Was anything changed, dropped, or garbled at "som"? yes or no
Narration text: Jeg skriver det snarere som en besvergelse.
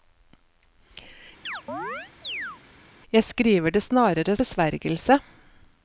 yes